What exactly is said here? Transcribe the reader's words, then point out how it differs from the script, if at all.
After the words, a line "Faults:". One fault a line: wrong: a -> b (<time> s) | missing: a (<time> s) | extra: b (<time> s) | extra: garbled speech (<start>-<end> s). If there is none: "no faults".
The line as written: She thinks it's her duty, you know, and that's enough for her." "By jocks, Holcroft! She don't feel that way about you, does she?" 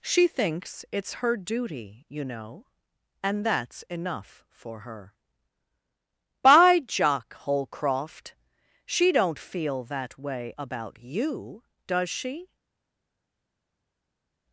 She thinks it's her duty, you know, and that's enough for her." "By jock, Holcroft! She don't feel that way about you, does she?"
Faults:
wrong: jocks -> jock (6.8 s)